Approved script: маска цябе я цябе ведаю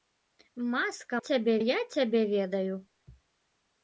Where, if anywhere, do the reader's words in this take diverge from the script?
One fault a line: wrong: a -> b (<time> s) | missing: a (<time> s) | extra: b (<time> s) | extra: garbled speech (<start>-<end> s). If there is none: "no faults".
no faults